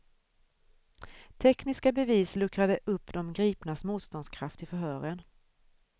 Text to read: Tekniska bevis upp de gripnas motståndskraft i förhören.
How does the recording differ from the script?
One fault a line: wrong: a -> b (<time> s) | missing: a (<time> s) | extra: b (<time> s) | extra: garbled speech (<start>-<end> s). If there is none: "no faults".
extra: luckrade (2.4 s)